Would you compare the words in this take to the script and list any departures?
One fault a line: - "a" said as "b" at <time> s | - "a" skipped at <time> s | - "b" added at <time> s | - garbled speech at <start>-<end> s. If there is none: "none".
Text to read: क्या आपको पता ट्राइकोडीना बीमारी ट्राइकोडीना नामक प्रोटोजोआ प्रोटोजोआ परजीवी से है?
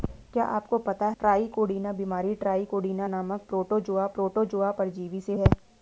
none